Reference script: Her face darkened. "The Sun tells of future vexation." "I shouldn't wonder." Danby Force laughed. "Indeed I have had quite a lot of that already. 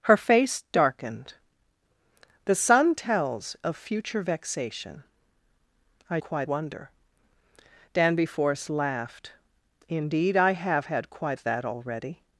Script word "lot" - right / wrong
wrong